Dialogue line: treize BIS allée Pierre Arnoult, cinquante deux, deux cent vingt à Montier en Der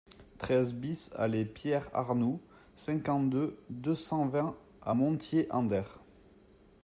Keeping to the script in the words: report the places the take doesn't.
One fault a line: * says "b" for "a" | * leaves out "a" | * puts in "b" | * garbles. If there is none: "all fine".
all fine